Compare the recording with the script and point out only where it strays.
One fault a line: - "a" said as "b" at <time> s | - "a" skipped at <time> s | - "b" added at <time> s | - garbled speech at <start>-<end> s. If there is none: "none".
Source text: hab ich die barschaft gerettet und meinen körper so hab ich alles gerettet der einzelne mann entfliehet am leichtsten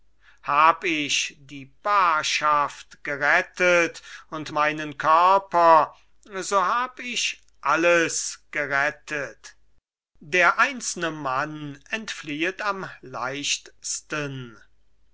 none